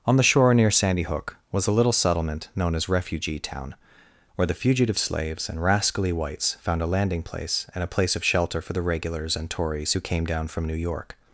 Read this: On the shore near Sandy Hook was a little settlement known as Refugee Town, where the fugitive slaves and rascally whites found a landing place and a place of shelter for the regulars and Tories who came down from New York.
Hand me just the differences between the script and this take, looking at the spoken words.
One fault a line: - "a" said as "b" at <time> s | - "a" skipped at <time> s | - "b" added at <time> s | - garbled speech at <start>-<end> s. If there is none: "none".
none